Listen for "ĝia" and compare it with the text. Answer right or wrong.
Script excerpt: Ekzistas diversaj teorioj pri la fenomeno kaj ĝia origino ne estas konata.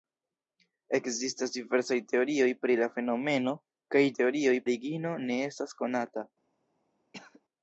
wrong